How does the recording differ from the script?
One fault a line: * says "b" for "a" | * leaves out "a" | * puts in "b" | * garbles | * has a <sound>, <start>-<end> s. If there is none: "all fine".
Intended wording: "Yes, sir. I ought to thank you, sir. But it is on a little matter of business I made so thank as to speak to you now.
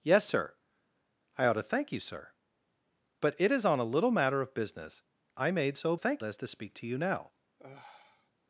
* has a sigh, 7.6-8.3 s